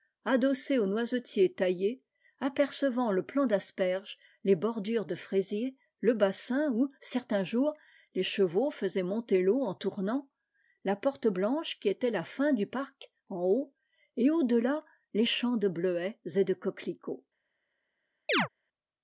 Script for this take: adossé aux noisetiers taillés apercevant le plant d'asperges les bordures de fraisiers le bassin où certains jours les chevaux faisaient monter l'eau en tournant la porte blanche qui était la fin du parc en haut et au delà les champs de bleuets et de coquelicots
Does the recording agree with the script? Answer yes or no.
yes